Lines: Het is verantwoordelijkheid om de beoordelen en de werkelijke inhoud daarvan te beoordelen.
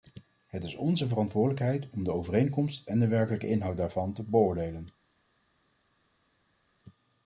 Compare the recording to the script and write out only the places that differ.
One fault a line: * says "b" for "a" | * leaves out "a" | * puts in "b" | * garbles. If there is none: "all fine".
* puts in "onze"
* says "overeenkomst" for "beoordelen"